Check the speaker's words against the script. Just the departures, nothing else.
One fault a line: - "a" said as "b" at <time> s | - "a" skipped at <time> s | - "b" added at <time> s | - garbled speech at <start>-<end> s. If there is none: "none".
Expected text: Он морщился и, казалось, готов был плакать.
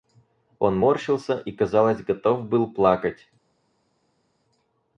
none